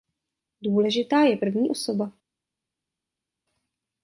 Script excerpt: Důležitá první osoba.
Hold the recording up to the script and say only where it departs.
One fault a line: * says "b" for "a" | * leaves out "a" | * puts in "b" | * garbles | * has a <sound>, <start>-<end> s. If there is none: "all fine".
* puts in "je"